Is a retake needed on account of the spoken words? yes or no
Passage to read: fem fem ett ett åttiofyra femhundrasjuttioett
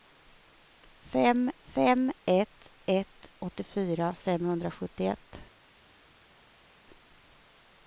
no